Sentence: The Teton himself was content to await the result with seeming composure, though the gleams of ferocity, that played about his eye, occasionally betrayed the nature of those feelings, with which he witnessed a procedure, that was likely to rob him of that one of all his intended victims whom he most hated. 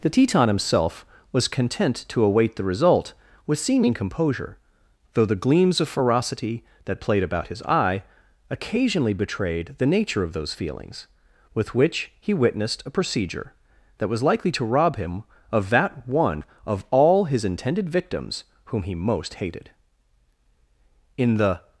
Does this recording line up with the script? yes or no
no